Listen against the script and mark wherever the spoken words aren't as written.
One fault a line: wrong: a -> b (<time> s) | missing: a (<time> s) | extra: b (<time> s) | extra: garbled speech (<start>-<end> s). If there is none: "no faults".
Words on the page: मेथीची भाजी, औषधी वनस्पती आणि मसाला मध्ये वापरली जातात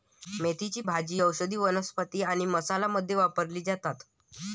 no faults